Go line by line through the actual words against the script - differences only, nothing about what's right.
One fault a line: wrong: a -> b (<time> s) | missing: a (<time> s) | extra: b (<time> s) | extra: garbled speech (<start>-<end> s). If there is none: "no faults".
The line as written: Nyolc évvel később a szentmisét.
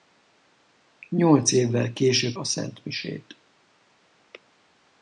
no faults